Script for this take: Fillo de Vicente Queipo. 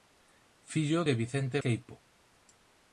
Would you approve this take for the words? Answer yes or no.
yes